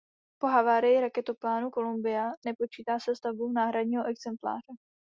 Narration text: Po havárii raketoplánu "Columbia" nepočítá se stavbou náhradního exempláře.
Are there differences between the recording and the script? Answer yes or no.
no